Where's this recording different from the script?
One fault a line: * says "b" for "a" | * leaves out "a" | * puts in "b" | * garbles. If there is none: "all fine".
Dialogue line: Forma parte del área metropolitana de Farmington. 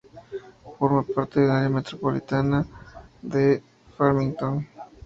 all fine